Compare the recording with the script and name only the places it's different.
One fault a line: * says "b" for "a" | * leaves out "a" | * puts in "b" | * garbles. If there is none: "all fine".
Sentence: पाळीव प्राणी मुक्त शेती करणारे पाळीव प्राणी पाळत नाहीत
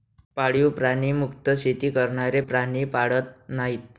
* leaves out "पाळीव"